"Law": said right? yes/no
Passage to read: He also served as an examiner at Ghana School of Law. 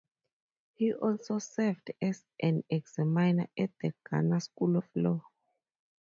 yes